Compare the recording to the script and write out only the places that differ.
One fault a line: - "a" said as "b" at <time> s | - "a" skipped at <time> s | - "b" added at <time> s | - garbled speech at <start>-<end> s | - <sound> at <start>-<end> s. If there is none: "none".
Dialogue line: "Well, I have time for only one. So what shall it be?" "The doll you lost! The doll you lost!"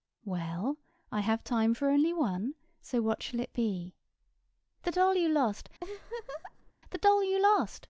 - laugh at 5.8-6.7 s